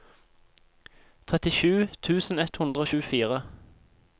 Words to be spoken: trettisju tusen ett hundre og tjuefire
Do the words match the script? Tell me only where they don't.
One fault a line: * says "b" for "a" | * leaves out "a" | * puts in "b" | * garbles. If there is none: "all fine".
all fine